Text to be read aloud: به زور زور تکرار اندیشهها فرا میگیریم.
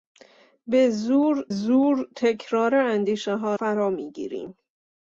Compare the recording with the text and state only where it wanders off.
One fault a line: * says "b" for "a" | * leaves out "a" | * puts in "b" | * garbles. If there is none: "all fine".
all fine